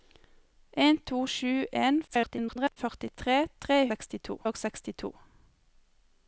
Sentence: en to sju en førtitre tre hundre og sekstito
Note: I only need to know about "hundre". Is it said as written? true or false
false